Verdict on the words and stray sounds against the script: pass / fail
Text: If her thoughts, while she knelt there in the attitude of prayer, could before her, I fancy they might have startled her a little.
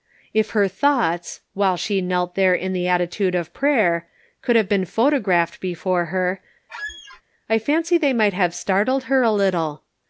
fail